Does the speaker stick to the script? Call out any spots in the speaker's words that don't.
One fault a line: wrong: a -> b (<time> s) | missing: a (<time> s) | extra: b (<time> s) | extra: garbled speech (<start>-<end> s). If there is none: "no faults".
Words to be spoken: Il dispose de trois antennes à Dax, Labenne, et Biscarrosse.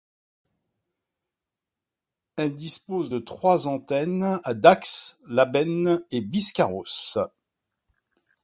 wrong: Il -> Elle (2.4 s)